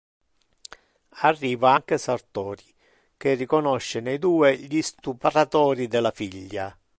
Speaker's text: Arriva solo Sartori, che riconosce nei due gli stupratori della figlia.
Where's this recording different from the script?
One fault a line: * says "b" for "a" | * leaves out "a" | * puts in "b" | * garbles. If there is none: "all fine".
* says "anche" for "solo"